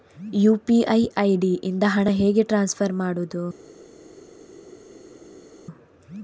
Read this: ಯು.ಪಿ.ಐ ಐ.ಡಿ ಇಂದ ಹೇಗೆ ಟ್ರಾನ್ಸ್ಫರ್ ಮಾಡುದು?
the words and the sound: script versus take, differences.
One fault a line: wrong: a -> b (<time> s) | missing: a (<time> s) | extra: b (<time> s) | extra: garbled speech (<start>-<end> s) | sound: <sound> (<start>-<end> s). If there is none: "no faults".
extra: ಹಣ (1.9 s)